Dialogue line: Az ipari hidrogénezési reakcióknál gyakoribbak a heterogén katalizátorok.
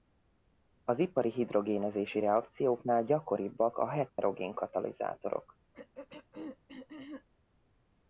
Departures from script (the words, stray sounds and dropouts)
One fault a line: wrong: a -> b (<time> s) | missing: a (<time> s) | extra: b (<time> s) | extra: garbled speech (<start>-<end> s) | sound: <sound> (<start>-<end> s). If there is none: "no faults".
sound: dropout (4.1-4.2 s)
sound: throat clearing (5.7-7.3 s)